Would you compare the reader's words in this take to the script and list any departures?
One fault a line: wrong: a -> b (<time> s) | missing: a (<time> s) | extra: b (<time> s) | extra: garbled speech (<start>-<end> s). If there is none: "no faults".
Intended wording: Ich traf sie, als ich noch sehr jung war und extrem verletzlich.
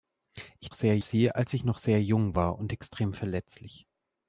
wrong: traf -> sehr (0.7 s)